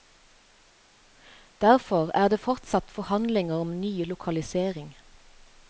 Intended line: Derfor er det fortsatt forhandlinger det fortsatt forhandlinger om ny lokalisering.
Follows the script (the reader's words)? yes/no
no